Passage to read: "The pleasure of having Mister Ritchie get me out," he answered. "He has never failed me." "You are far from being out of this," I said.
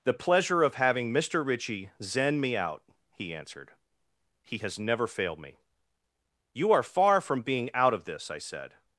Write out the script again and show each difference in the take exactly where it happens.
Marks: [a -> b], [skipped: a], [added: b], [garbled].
"The pleasure of having Mister Ritchie [get -> zen] me out," he answered. "He has never failed me." "You are far from being out of this," I said.